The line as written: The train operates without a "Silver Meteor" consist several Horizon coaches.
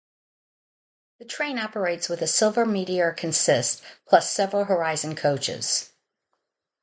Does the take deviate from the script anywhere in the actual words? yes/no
yes